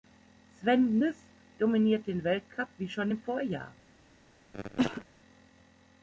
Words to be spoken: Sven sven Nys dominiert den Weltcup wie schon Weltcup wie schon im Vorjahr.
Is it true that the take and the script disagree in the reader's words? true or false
true